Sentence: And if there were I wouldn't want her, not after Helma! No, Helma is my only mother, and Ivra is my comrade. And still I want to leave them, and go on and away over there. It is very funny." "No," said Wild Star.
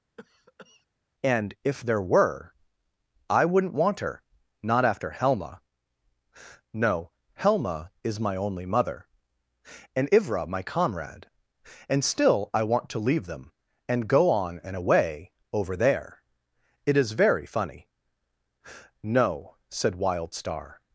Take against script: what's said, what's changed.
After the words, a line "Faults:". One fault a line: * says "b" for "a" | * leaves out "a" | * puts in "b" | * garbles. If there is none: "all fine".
And if there were I wouldn't want her, not after Helma! No, Helma is my only mother, and Ivra my comrade. And still I want to leave them, and go on and away over there. It is very funny." "No," said Wild Star.
Faults:
* leaves out "is"